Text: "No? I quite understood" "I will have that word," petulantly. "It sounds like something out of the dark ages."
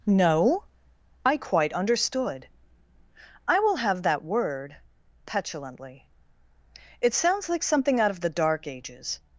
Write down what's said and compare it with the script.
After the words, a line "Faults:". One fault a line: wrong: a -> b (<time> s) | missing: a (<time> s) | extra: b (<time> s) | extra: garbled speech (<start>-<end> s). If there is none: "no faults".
"No? I quite understood" "I will have that word," petulantly. "It sounds like something out of the dark ages."
Faults:
no faults